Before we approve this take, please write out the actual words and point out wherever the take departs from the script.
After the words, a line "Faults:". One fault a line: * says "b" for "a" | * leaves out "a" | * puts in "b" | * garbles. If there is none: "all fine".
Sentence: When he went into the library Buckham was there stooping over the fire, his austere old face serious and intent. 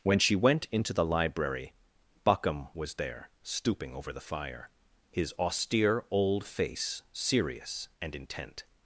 When she went into the library Buckham was there stooping over the fire, his austere old face serious and intent.
Faults:
* says "she" for "he"